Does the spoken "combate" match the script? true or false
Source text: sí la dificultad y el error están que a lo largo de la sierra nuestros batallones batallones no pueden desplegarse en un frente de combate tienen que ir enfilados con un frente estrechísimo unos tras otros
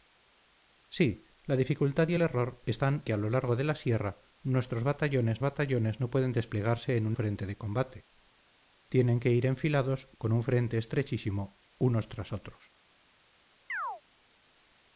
true